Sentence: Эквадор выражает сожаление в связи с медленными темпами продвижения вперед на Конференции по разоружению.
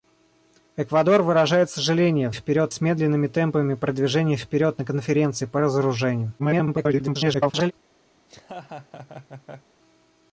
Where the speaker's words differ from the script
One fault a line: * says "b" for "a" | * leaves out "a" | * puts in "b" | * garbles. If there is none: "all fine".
* says "вперед" for "связи"
* garbles